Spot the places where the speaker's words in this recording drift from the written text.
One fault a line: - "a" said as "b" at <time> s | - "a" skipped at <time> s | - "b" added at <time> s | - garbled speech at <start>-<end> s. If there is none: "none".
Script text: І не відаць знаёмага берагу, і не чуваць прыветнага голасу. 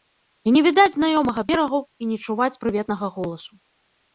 none